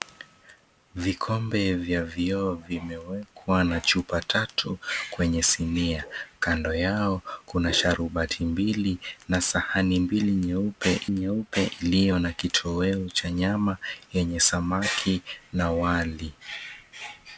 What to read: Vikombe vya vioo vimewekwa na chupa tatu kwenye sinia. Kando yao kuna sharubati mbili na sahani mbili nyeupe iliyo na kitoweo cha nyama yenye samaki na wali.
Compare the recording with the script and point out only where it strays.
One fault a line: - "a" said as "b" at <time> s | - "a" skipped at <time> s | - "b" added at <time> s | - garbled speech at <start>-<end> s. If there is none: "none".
- "nyeupe" added at 11.1 s